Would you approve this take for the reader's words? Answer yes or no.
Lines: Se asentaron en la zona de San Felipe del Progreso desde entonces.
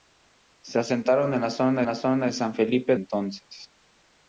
no